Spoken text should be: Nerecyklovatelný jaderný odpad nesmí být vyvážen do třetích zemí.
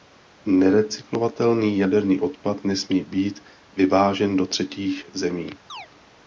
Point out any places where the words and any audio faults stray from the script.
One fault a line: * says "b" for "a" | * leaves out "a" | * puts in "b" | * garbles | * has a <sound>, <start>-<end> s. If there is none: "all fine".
* has a chirp, 5.7-5.9 s